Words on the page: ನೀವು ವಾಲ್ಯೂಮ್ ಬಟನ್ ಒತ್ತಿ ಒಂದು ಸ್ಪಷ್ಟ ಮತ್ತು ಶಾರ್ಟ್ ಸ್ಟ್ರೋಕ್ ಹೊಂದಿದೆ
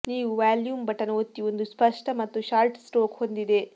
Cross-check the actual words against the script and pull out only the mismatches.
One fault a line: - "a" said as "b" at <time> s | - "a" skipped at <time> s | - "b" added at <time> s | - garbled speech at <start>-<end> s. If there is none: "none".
none